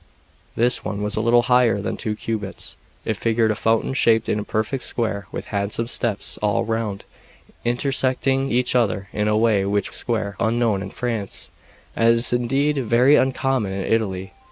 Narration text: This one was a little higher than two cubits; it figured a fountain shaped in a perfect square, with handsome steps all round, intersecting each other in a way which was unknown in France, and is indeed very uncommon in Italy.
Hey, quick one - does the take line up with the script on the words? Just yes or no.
no